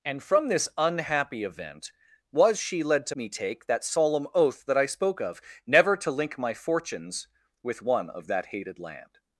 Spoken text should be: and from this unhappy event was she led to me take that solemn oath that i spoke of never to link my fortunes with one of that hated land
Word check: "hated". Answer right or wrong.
right